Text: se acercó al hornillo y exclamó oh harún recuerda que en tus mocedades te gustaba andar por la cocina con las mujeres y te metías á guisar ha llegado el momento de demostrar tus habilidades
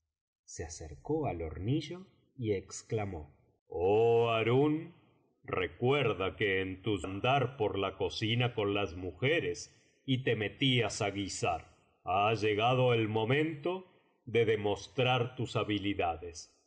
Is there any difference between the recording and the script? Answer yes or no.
yes